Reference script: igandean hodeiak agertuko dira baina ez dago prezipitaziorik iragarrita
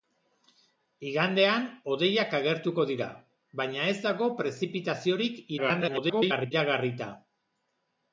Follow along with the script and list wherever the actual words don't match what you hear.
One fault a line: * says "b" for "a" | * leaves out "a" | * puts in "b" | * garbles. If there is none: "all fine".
* garbles